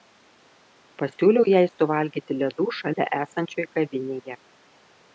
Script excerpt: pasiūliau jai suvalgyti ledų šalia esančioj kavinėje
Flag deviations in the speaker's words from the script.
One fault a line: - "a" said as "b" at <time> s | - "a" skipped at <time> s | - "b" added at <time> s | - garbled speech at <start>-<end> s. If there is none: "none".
none